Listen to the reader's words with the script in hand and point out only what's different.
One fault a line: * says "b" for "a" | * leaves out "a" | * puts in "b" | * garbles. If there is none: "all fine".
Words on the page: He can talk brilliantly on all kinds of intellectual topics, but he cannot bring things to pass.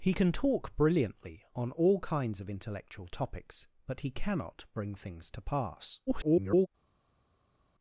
* garbles